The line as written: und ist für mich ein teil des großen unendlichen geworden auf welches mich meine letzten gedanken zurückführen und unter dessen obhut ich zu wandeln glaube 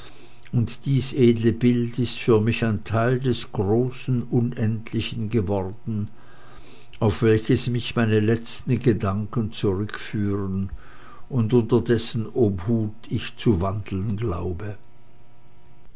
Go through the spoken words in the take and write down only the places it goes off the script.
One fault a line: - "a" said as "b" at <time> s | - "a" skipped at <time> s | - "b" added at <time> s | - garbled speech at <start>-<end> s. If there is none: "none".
- "dies edle bild" added at 0.9 s